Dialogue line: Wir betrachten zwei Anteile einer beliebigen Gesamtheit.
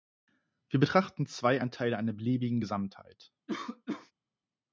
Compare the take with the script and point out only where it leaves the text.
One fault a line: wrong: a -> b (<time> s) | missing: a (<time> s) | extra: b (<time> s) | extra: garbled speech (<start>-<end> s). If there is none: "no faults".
no faults